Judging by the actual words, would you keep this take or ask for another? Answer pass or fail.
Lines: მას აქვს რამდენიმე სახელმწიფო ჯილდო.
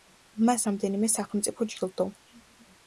fail